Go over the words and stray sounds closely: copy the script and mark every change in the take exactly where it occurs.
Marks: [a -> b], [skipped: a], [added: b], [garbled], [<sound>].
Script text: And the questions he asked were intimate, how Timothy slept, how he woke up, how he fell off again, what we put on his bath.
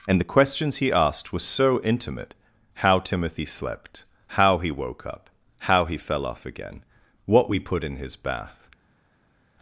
And the questions he asked were [added: so] intimate, how Timothy slept, how he woke up, how he fell off again, what we put [on -> in] his bath.